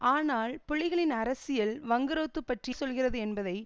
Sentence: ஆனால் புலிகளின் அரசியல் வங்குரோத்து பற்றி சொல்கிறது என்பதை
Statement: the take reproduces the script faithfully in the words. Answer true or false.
true